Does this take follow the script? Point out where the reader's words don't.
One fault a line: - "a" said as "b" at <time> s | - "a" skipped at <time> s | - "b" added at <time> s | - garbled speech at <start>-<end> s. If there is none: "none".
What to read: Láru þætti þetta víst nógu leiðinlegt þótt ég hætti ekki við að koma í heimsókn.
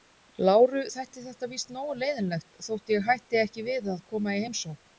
none